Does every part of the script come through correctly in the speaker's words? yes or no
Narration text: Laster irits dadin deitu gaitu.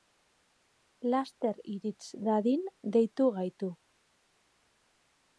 yes